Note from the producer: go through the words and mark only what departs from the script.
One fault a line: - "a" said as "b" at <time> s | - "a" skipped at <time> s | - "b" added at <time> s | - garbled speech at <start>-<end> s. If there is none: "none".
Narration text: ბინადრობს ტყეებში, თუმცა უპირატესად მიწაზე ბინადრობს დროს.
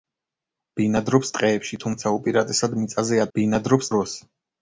none